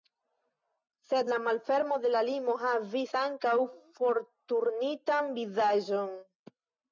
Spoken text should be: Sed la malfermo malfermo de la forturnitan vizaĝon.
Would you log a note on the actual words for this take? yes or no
yes